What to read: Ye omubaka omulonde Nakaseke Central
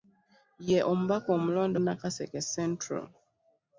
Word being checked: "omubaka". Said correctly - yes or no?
yes